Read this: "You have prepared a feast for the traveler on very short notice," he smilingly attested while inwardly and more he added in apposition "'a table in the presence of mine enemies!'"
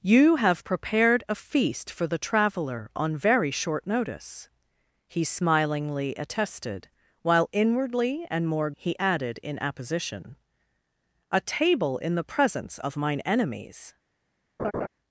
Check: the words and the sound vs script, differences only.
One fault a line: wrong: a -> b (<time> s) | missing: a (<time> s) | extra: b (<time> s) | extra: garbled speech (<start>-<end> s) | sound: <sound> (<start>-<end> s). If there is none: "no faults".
sound: laugh (14.6-14.9 s)